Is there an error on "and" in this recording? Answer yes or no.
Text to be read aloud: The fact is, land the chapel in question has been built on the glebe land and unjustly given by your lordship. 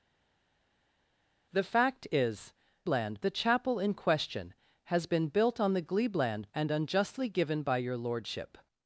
no